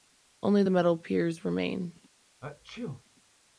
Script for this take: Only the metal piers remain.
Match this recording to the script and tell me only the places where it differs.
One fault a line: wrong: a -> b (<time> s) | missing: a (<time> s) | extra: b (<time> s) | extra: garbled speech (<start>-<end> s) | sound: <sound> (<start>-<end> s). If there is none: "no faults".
sound: sneeze (2.4-3.0 s)